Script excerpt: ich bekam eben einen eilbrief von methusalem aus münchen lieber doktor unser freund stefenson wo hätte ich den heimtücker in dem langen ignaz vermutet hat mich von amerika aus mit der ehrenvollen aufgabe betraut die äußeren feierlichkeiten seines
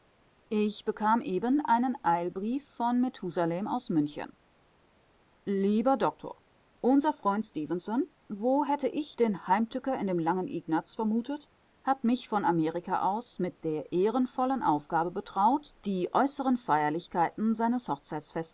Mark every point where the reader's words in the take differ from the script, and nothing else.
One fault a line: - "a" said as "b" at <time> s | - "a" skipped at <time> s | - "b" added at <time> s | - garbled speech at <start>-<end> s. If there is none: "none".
none